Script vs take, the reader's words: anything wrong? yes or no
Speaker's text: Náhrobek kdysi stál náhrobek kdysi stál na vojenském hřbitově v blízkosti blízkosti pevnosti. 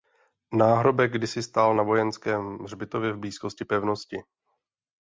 yes